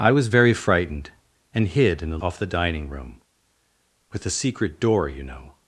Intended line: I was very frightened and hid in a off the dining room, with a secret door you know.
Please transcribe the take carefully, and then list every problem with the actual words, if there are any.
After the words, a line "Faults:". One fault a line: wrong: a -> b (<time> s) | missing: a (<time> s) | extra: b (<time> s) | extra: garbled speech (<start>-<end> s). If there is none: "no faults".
I was very frightened and hid in a off the dining room, with a secret door you know.
Faults:
no faults